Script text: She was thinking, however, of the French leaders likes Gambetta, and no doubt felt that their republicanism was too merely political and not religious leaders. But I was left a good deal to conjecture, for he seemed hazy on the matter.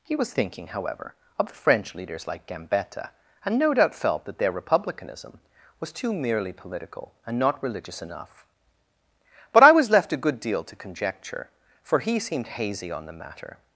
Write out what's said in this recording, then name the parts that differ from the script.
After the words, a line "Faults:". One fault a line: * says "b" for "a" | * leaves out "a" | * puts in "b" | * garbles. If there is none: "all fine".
He was thinking, however, of the French leaders like Gambetta, and no doubt felt that their republicanism was too merely political and not religious enough. But I was left a good deal to conjecture, for he seemed hazy on the matter.
Faults:
* says "He" for "She"
* says "like" for "likes"
* says "enough" for "leaders"